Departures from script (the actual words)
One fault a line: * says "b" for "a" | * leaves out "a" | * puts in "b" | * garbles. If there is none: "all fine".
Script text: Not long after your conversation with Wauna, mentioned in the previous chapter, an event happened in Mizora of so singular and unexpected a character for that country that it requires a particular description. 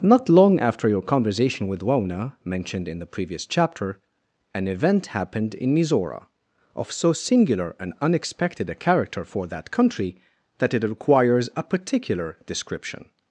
all fine